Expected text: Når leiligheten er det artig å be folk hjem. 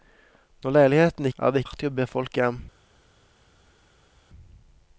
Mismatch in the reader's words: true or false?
false